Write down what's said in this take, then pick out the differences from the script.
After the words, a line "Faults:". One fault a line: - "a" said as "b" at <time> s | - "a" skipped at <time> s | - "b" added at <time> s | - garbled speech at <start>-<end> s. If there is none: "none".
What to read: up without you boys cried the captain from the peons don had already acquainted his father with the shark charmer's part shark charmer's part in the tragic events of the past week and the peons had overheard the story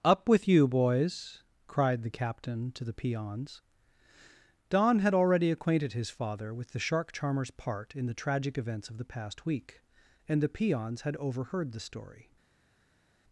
up with you boys cried the captain to the peons don had already acquainted his father with the shark charmer's part in the tragic events of the past week and the peons had overheard the story
Faults:
- "without" said as "with" at 0.3 s
- "from" said as "to" at 2.7 s
- "shark charmer's part" skipped at 8.0 s